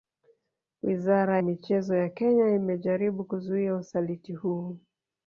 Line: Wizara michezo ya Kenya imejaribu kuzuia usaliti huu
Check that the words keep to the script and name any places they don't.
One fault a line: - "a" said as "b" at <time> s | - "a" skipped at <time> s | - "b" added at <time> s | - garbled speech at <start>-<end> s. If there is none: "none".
none